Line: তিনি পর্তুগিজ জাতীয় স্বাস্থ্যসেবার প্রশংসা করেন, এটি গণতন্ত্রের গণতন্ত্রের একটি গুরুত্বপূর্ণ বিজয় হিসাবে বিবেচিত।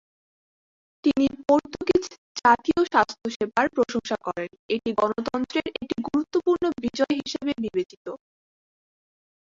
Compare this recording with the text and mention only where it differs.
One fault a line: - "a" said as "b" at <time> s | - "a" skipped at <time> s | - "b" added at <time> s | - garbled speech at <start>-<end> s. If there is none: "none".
- "গণতন্ত্রের" skipped at 5.7 s